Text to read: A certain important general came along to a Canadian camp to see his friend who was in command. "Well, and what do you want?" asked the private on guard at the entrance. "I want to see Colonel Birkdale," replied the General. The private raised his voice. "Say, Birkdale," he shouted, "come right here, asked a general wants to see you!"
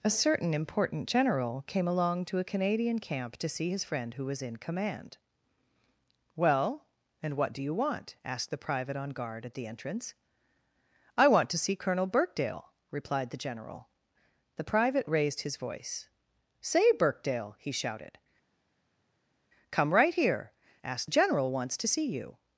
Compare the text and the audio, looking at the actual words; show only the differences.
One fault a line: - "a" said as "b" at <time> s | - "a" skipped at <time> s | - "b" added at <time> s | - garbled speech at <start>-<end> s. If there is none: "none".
none